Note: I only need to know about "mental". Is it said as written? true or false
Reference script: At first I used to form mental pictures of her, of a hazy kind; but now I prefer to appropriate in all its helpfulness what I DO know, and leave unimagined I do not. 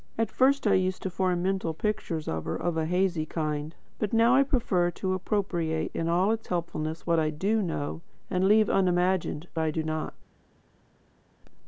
true